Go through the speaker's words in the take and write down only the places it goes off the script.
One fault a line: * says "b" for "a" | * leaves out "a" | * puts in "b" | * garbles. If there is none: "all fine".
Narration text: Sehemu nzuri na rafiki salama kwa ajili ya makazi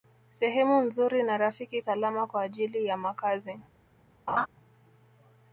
all fine